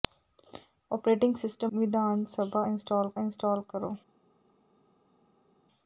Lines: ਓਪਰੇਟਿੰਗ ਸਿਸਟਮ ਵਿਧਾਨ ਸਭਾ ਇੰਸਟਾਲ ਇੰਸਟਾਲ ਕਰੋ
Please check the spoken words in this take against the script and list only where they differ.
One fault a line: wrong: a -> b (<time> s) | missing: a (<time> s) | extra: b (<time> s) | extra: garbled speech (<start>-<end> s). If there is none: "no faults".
no faults